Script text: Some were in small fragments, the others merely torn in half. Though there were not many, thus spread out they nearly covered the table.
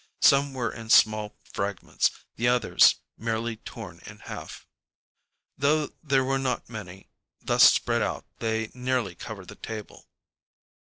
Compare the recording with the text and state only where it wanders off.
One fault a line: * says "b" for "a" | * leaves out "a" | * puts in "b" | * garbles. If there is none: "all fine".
all fine